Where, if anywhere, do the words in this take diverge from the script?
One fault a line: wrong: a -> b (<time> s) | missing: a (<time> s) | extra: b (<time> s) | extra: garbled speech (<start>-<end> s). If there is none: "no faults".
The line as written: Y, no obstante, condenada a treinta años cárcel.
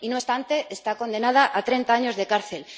extra: está (0.7 s)
extra: de (2.1 s)